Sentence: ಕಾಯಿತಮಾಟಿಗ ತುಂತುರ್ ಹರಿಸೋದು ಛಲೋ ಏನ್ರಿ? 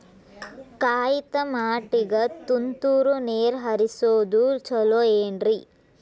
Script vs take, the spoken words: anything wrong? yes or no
yes